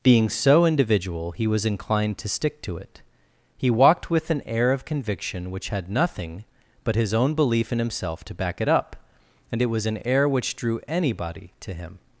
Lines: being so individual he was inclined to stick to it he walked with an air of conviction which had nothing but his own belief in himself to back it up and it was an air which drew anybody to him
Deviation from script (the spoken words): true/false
false